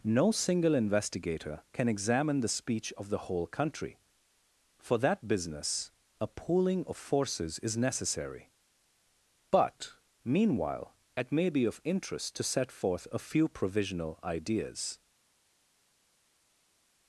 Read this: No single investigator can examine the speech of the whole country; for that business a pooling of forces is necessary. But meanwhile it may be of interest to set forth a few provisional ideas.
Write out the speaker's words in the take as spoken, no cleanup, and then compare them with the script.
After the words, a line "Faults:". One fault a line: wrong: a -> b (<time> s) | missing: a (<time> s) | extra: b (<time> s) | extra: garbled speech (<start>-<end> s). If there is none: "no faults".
No single investigator can examine the speech of the whole country; for that business a pooling of forces is necessary. But meanwhile it may be of interest to set forth a few provisional ideas.
Faults:
no faults